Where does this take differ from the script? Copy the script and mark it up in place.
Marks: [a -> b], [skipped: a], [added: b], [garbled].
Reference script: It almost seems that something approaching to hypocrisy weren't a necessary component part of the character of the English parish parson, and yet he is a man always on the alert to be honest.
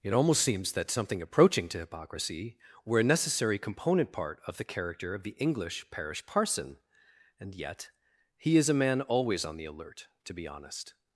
It almost seems that something approaching to hypocrisy [weren't -> were] a necessary component part of the character of the English parish parson, and yet he is a man always on the alert to be honest.